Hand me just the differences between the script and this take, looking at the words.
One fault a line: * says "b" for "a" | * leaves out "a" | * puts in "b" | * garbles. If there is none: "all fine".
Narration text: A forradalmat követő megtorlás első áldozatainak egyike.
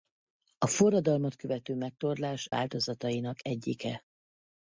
* leaves out "első"